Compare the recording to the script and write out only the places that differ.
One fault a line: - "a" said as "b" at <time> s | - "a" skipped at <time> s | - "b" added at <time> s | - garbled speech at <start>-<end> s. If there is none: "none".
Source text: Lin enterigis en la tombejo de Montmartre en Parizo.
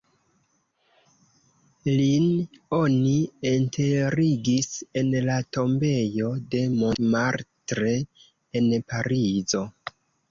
- "oni" added at 2.8 s